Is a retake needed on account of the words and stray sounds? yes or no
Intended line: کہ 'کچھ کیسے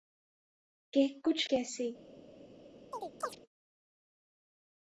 yes